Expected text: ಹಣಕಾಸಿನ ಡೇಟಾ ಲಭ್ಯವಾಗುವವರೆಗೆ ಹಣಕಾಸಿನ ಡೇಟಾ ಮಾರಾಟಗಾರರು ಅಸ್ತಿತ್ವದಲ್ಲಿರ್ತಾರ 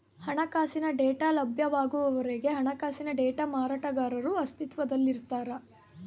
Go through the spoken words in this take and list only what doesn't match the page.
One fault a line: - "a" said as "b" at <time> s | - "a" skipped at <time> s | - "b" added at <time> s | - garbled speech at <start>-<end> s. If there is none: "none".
none